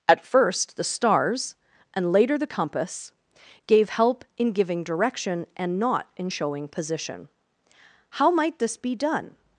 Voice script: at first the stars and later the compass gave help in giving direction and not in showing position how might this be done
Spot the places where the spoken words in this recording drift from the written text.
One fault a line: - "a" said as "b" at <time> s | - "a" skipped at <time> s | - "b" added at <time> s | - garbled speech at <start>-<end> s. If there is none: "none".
none